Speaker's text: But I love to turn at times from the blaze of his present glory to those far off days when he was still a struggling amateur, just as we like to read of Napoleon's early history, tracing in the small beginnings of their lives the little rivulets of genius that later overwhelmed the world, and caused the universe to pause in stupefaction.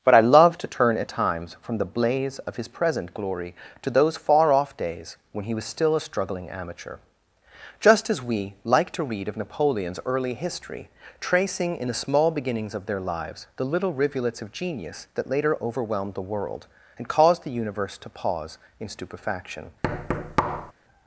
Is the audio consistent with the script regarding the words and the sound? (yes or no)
no